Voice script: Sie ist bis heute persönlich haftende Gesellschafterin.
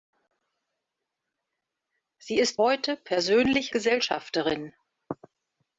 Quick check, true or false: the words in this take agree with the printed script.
false